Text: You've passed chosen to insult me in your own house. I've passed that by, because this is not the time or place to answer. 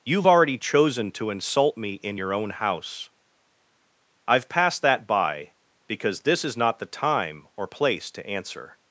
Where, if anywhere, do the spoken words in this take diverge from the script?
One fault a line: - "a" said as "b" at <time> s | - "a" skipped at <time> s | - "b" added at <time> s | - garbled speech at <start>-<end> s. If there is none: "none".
- "passed" said as "already" at 0.3 s